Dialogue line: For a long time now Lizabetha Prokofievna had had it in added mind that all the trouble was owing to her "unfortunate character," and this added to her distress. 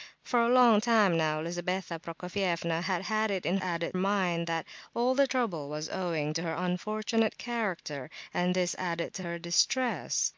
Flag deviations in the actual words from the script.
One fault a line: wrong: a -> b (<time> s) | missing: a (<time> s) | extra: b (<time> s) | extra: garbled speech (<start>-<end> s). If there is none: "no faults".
no faults